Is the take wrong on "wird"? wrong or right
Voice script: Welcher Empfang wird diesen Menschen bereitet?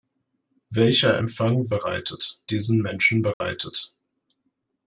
wrong